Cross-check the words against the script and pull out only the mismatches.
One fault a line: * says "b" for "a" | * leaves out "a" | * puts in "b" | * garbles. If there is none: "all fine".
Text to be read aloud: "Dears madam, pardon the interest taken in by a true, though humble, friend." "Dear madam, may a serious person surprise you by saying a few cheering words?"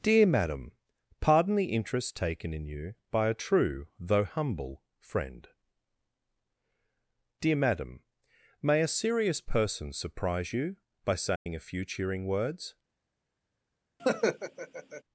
* says "Dear" for "Dears"
* puts in "you"